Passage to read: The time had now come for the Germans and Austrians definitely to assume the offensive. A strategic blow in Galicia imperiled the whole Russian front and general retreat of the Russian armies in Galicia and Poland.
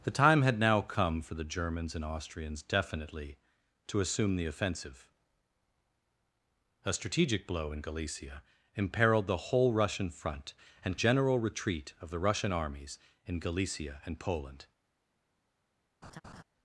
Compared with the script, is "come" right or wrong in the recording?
right